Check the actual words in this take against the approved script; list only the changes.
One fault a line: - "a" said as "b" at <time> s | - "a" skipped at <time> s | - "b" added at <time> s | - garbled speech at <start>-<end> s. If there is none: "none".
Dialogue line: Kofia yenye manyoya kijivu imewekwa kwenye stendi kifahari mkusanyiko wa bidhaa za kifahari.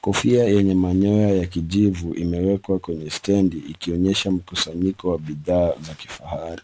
- "ya" added at 1.3 s
- "kifahari" said as "ikionyesha" at 3.6 s